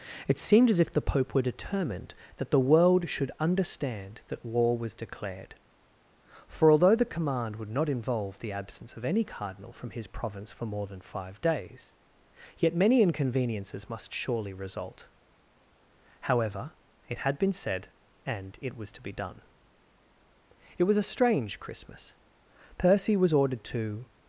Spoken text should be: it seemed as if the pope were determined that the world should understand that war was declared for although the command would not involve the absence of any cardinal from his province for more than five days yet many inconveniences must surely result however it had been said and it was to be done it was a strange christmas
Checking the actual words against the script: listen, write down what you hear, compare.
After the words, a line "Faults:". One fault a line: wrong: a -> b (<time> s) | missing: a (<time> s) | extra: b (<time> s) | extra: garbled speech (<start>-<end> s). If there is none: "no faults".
it seemed as if the pope were determined that the world should understand that war was declared for although the command would not involve the absence of any cardinal from his province for more than five days yet many inconveniences must surely result however it had been said and it was to be done it was a strange christmas percy was ordered to
Faults:
extra: percy was ordered to (22.8 s)